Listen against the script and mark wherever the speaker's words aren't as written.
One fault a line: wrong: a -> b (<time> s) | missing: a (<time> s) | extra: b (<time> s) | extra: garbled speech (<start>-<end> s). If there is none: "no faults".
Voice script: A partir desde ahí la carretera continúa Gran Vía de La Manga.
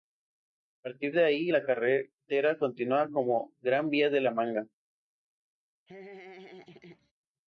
wrong: desde -> de (1.1 s)
extra: como (3.1 s)